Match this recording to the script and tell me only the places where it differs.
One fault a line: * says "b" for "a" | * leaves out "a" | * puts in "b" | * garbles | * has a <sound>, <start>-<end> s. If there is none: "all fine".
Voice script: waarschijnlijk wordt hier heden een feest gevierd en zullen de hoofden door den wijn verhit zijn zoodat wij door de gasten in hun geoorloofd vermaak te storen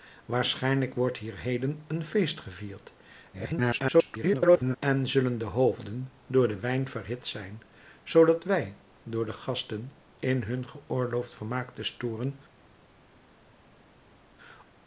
* garbles